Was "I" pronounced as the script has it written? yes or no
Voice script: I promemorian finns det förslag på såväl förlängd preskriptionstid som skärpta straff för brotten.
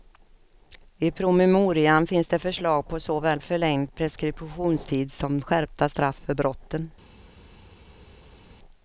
yes